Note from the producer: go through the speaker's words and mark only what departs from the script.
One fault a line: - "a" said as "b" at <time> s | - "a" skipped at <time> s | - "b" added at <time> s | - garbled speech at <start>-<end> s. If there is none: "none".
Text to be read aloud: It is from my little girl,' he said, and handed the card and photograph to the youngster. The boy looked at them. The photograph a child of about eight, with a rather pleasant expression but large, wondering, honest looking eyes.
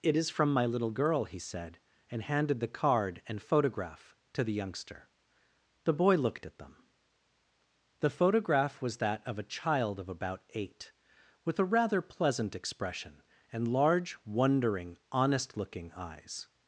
- "was that of" added at 8.8 s
- "but" said as "and" at 13.5 s